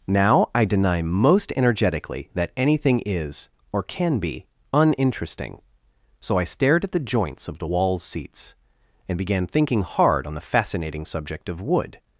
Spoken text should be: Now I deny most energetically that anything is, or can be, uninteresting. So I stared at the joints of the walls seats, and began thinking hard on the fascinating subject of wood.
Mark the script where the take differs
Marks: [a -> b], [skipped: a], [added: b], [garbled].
Now I deny most energetically that anything is, or can be, uninteresting. So I stared at the joints of the walls seats, and began thinking hard on the fascinating subject of wood.